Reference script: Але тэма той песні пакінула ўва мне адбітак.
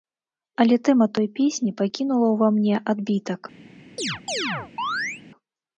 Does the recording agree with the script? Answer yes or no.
yes